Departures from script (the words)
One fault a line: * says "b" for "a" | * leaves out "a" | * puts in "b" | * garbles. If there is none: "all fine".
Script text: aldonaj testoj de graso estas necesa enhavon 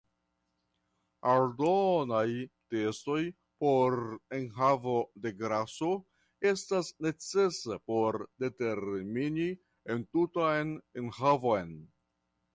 * puts in "por enhavo"
* puts in "por determini entutan"